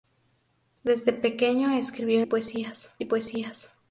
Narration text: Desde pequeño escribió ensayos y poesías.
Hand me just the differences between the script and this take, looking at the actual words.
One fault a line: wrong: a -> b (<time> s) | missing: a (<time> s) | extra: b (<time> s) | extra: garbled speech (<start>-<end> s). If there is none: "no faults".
wrong: ensayos -> poesías (2.2 s)